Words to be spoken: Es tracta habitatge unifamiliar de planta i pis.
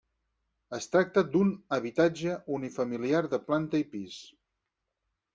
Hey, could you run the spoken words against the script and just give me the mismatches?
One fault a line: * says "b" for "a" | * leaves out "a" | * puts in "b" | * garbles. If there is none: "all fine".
* puts in "d'un"